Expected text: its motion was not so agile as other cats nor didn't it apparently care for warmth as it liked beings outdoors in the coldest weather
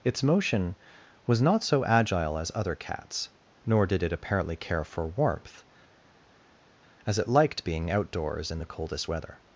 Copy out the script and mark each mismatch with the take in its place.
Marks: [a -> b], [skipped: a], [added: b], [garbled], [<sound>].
its motion was not so agile as other cats nor [didn't -> did] it apparently care for warmth as it liked [beings -> being] outdoors in the coldest weather